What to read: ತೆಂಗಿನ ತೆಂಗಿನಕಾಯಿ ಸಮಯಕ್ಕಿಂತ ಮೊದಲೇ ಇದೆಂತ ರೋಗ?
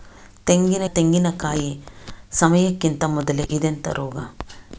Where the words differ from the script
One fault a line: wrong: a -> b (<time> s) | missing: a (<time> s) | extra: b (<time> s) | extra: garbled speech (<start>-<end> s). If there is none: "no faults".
no faults